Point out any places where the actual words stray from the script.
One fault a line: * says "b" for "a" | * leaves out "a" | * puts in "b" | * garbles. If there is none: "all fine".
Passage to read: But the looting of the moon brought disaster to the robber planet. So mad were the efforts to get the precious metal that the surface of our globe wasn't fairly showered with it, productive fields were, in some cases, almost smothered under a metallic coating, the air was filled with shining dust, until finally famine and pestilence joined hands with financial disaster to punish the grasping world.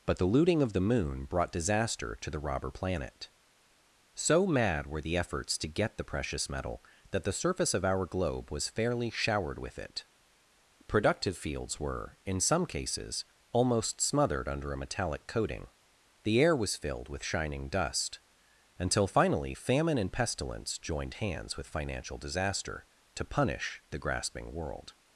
* says "was" for "wasn't"